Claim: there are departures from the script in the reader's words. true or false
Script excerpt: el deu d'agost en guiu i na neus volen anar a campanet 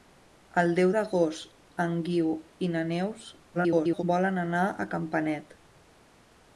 true